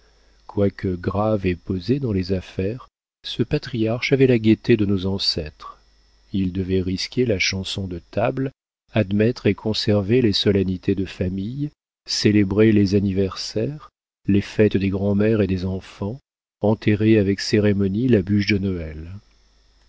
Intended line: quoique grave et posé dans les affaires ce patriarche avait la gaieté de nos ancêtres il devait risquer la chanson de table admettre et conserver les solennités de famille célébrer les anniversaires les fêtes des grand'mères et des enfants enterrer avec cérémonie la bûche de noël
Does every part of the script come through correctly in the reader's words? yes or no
yes